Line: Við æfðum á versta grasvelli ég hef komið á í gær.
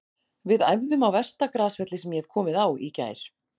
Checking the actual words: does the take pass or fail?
fail